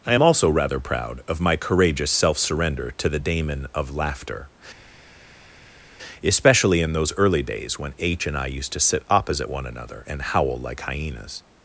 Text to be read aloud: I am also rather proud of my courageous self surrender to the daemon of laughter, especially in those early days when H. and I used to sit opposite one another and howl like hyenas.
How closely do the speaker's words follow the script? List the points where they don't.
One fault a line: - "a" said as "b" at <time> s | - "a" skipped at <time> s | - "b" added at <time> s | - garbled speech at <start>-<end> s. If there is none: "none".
none